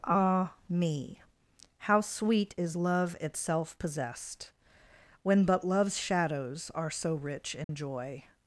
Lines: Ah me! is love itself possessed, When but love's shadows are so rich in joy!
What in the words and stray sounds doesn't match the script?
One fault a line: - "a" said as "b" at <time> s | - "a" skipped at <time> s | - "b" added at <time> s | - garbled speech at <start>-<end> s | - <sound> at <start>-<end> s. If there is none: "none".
- "how sweet" added at 1.8 s
- dropout at 7.6-7.7 s